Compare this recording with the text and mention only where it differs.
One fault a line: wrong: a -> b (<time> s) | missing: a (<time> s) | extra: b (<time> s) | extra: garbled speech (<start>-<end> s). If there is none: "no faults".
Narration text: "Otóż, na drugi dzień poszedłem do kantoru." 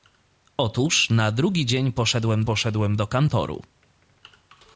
extra: poszedłem (2.4 s)